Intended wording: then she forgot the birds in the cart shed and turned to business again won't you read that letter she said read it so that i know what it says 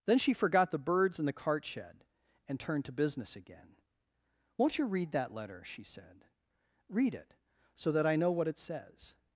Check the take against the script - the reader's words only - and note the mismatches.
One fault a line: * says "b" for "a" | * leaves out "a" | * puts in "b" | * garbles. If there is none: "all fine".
all fine